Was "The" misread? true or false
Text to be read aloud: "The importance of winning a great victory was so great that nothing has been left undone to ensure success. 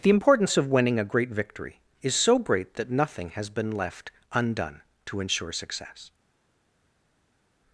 false